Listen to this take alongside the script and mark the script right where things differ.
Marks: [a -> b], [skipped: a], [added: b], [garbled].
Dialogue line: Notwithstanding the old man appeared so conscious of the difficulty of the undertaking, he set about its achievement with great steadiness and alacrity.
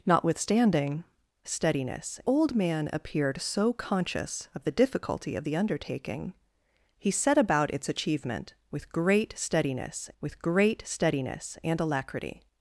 Notwithstanding [the -> steadiness] old man appeared so conscious of the difficulty of the undertaking, he set about its achievement with great steadiness [added: with great steadiness] and alacrity.